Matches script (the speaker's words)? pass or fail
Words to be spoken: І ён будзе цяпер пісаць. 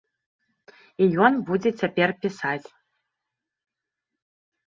pass